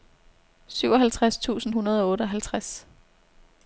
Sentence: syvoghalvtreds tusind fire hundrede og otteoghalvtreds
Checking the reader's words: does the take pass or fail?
fail